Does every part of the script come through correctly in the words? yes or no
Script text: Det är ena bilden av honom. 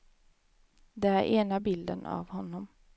yes